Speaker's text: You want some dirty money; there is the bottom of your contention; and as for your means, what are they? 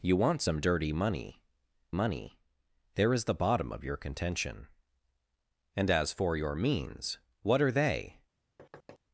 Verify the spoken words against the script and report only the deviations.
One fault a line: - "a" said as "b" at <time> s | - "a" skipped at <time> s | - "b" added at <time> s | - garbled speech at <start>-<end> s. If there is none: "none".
- "money" added at 1.9 s